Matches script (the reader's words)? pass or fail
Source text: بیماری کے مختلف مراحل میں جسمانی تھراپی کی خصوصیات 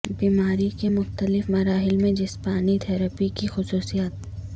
pass